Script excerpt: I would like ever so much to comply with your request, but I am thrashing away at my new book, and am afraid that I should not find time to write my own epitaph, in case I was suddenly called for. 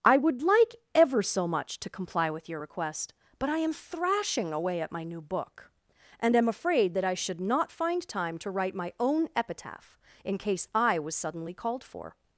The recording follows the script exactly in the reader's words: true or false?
true